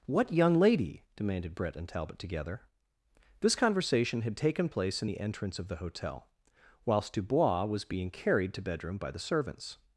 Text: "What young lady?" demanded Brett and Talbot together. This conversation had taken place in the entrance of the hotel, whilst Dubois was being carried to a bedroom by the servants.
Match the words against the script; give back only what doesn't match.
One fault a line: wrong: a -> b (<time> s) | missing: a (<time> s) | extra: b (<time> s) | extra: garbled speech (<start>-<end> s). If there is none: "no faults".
missing: a (8.6 s)